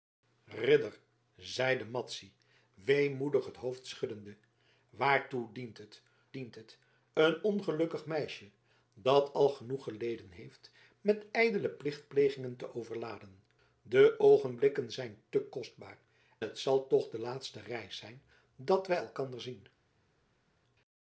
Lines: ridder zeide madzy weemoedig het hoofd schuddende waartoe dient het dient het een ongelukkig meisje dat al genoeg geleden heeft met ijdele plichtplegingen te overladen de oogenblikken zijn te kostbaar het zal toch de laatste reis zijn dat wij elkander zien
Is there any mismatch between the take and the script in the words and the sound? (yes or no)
no